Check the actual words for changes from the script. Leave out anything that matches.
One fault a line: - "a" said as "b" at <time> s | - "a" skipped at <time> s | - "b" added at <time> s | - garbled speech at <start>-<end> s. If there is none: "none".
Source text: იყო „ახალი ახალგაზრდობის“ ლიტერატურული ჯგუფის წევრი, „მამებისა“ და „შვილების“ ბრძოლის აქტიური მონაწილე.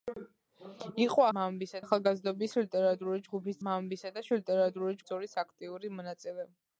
- "ახალი" said as "მამებისა" at 1.4 s
- "წევრი" skipped at 3.6 s
- "შვილების" said as "ლიტერატურული" at 4.4 s